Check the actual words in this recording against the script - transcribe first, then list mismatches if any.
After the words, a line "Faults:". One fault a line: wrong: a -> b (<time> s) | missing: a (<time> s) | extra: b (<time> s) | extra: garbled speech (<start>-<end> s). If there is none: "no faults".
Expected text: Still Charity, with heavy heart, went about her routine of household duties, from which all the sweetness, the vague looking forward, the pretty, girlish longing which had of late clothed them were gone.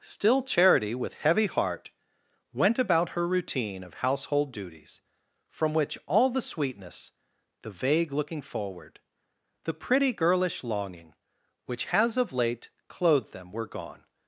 Still Charity, with heavy heart, went about her routine of household duties, from which all the sweetness, the vague looking forward, the pretty, girlish longing which has of late clothed them were gone.
Faults:
wrong: had -> has (11.8 s)